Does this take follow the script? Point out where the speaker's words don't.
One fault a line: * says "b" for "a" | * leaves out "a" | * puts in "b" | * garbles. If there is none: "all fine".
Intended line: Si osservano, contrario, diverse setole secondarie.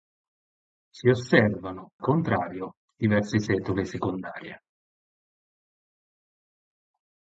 all fine